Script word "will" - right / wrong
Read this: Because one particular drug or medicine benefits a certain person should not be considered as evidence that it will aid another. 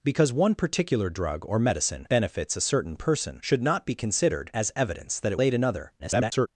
wrong